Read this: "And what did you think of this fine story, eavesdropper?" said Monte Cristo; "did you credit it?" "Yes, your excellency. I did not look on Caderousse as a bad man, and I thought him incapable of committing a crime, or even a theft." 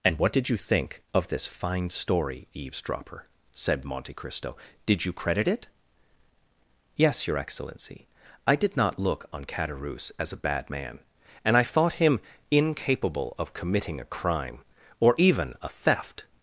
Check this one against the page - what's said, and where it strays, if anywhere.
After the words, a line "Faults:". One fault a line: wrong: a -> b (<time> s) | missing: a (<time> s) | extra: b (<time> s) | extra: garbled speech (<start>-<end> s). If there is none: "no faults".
"And what did you think of this fine story, eavesdropper?" said Monte Cristo; "did you credit it?" "Yes, your excellency. I did not look on Caderousse as a bad man, and I thought him incapable of committing a crime, or even a theft."
Faults:
no faults